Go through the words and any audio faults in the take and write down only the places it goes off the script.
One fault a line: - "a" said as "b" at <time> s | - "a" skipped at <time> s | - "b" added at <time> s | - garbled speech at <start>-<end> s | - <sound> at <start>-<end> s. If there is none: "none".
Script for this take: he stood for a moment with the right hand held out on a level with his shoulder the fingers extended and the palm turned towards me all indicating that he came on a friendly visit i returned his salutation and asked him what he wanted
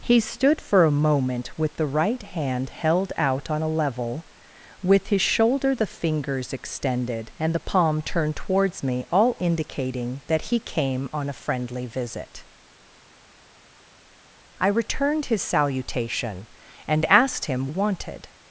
- "what he" skipped at 17.7 s